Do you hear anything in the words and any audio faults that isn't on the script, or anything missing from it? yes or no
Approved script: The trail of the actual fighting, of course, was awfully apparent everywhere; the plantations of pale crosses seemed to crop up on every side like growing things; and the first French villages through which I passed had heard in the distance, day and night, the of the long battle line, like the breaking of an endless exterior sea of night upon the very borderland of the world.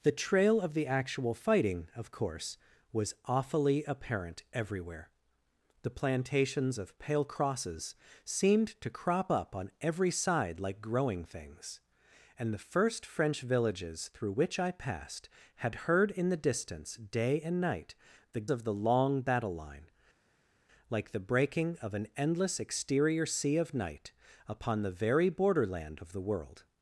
no